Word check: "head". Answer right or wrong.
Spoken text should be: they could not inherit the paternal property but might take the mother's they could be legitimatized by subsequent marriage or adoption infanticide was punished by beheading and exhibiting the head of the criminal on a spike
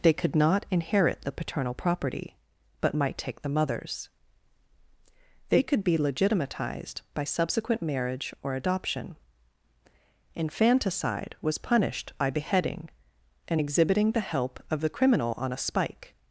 wrong